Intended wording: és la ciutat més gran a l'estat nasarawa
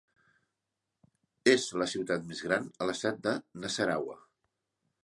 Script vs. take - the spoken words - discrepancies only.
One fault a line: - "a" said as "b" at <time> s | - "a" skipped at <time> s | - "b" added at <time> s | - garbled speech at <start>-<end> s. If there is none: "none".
- "de" added at 3.3 s